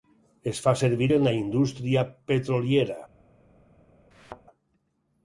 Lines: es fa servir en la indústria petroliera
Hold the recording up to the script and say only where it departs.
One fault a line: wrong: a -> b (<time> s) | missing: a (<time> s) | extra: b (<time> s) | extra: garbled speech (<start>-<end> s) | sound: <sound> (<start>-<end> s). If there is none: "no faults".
sound: thud (4.1-4.4 s)